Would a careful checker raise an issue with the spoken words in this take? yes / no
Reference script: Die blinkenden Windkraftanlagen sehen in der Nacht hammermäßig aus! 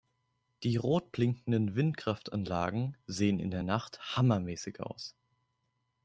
yes